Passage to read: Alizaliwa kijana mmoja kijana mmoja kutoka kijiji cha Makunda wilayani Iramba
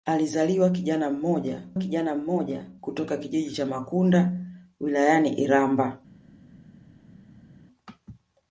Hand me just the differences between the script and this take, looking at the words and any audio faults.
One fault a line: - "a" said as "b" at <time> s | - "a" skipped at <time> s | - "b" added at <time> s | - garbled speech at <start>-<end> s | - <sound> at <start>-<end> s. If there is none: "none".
none